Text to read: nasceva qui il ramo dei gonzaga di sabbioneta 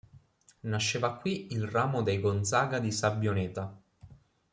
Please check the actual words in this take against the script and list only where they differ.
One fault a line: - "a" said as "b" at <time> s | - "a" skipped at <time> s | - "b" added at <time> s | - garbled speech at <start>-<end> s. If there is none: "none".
none